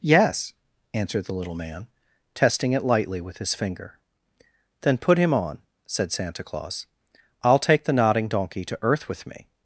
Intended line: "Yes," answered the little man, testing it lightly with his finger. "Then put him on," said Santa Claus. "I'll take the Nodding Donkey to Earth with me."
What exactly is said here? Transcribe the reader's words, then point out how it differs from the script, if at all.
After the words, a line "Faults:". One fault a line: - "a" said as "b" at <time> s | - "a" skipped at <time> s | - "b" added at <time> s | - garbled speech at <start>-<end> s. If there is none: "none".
"Yes," answered the little man, testing it lightly with his finger. "Then put him on," said Santa Claus. "I'll take the Nodding Donkey to Earth with me."
Faults:
none